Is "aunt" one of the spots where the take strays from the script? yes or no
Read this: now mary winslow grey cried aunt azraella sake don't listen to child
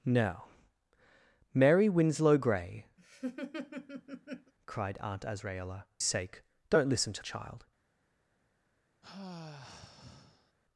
no